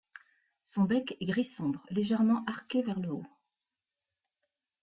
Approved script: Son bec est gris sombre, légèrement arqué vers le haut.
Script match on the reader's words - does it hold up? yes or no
yes